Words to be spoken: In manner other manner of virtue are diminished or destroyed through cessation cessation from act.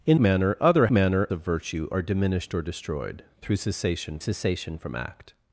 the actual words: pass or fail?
pass